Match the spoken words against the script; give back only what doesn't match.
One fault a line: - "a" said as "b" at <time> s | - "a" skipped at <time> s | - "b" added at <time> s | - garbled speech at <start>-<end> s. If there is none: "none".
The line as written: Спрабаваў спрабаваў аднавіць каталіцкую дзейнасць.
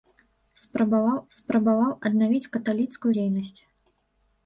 none